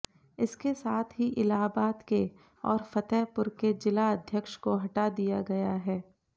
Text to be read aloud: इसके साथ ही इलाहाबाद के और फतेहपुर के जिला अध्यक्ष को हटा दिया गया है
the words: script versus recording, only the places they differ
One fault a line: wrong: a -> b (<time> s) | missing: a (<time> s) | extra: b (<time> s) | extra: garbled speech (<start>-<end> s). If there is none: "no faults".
no faults